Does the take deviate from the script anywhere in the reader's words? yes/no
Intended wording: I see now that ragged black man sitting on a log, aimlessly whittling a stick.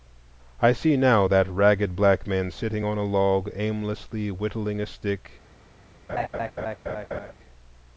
no